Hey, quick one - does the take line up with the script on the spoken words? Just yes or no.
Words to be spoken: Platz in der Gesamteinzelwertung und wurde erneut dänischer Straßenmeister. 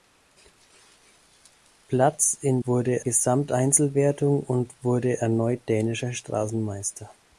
no